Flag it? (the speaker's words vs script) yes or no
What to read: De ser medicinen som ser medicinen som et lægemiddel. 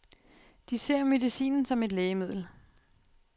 yes